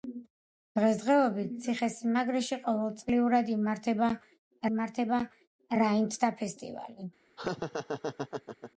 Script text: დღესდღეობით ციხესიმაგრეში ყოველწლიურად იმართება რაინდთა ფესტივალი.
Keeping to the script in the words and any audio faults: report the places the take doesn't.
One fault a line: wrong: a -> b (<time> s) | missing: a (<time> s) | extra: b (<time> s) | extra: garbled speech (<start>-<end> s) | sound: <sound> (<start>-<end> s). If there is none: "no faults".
extra: იმართება (4.7 s)
sound: laugh (7.4-8.7 s)